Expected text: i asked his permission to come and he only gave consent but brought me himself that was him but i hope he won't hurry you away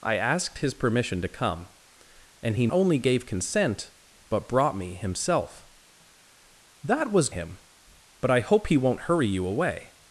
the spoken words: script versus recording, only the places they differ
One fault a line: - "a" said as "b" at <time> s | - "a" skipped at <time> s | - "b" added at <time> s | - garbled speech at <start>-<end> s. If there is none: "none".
none